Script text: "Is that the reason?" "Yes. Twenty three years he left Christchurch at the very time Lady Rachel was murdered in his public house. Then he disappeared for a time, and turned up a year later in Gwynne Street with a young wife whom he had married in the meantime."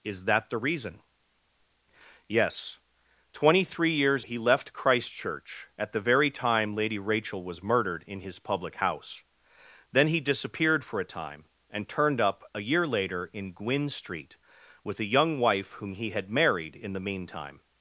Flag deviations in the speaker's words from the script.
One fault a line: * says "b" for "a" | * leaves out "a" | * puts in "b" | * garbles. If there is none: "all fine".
all fine